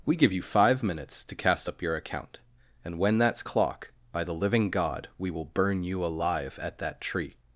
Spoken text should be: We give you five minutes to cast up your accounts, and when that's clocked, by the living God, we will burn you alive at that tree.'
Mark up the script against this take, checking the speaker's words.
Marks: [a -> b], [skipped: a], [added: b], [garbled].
We give you five minutes to cast up your [accounts, -> account] and when that's [clocked, -> clock] by the living God, we will burn you alive at that tree.'